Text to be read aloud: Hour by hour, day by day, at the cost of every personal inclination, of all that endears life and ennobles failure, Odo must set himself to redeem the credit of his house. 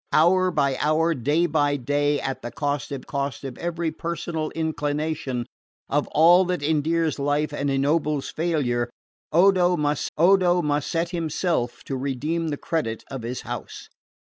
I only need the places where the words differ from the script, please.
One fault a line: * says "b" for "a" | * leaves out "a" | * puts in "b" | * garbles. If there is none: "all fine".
* puts in "cost of"
* puts in "Odo must"